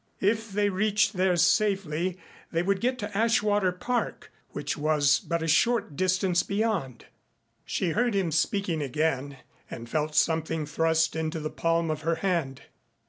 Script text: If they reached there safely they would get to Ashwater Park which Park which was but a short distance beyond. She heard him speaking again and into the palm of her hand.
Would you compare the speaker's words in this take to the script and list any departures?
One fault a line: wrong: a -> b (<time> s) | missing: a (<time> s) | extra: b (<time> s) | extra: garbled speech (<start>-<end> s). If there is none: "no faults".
missing: Park which (4.8 s)
extra: felt something thrust (9.9 s)